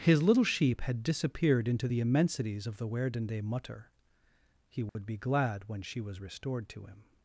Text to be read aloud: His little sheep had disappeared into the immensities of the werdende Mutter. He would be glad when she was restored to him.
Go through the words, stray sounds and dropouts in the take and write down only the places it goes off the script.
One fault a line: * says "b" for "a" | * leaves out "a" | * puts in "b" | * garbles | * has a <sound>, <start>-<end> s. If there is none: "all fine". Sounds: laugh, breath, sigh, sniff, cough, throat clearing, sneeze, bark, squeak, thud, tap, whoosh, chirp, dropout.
* has a dropout, 4.9-5.0 s